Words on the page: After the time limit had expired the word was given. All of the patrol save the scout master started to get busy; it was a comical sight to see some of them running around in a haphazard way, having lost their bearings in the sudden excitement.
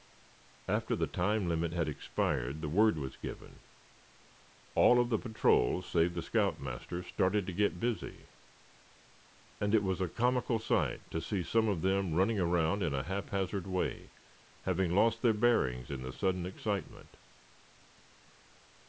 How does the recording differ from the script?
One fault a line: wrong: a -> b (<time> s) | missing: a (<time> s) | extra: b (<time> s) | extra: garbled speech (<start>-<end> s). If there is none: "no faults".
extra: and (9.6 s)